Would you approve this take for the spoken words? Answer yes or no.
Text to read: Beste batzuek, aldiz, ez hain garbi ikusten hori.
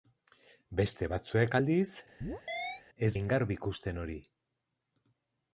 yes